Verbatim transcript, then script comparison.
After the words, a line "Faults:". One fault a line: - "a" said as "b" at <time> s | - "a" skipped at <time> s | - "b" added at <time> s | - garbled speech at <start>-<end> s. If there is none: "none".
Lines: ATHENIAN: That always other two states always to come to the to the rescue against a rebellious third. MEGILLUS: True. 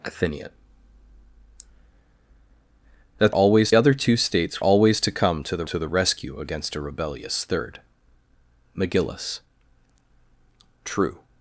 ATHENIAN: That always other two states always to come to the to the rescue against a rebellious third. MEGILLUS: True.
Faults:
none